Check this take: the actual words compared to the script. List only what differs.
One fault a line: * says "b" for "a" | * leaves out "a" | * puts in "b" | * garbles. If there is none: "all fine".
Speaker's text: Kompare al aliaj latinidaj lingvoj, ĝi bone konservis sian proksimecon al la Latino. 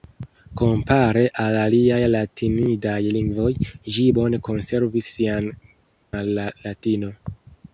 * leaves out "proksimecon"